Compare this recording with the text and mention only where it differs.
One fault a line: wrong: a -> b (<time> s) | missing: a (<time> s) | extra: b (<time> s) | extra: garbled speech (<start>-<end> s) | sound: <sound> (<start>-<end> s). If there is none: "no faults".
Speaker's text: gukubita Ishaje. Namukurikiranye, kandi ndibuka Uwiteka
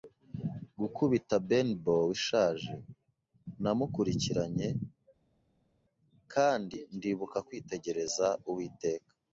extra: Benbow (1.5 s)
extra: kwitegereza (7.5 s)